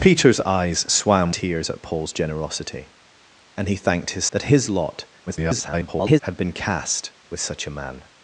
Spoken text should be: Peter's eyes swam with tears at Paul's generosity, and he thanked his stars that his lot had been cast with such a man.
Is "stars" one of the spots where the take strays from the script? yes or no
yes